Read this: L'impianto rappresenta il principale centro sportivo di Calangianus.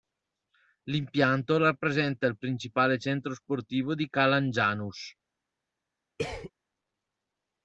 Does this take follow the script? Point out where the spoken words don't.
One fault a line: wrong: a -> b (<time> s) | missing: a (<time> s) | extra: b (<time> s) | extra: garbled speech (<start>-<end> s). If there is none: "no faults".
no faults